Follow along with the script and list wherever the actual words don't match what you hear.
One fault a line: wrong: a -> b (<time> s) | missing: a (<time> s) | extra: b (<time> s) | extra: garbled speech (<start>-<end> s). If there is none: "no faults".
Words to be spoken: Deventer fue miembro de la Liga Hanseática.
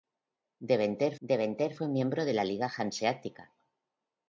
extra: deventer (1.2 s)